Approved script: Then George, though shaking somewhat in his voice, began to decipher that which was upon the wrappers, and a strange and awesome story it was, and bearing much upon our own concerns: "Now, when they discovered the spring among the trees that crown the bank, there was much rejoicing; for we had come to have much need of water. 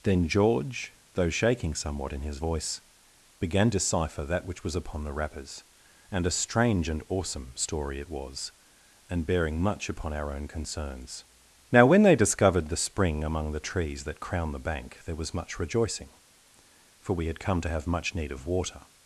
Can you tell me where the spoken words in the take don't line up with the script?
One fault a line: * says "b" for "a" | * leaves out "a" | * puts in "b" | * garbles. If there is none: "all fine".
* leaves out "to"